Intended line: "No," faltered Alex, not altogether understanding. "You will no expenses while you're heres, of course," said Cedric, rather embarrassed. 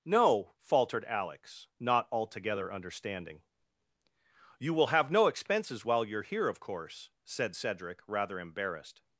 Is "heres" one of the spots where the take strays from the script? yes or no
yes